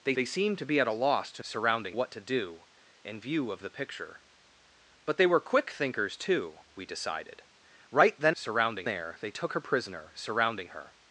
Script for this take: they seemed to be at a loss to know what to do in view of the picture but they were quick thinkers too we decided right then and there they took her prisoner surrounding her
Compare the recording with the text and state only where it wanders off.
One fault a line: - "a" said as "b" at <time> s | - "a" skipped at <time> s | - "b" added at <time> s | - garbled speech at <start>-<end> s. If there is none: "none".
- "they" added at 0.1 s
- "know" said as "surrounding" at 1.4 s
- "and" said as "surrounding" at 8.3 s